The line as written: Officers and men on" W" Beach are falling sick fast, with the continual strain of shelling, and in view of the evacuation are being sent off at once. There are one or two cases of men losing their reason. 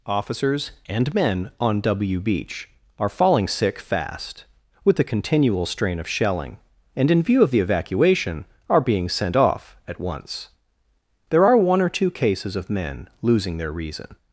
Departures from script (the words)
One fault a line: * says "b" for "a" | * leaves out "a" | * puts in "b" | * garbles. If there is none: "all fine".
all fine